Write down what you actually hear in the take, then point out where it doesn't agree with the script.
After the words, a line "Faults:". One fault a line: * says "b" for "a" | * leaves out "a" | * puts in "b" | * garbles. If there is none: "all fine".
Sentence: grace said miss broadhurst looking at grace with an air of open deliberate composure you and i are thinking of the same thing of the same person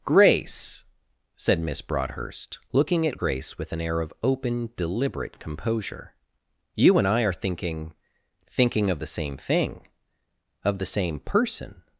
grace said miss broadhurst looking at grace with an air of open deliberate composure you and i are thinking thinking of the same thing of the same person
Faults:
* puts in "thinking"